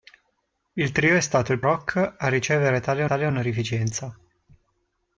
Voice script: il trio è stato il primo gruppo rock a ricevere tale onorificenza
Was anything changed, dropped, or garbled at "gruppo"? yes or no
yes